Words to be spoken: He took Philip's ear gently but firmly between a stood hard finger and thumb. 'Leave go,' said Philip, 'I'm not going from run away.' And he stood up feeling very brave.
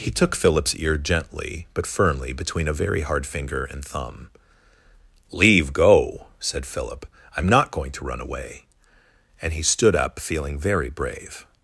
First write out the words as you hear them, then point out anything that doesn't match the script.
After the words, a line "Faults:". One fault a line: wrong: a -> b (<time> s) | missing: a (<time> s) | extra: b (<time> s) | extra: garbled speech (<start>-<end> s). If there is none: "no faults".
He took Philip's ear gently but firmly between a very hard finger and thumb. 'Leave go,' said Philip, 'I'm not going to run away.' And he stood up feeling very brave.
Faults:
wrong: stood -> very (2.7 s)
wrong: from -> to (7.9 s)